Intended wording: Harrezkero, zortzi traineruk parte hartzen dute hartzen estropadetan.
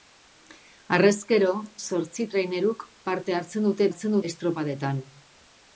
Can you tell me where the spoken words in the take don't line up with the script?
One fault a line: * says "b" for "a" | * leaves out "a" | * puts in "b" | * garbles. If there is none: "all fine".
all fine